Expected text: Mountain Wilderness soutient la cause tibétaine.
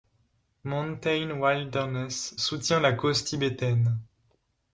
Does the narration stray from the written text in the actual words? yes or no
no